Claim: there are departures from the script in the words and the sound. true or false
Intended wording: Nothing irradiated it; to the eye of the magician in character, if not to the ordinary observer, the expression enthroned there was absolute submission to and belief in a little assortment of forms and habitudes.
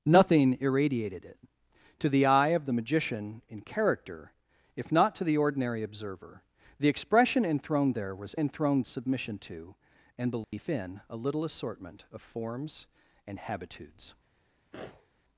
true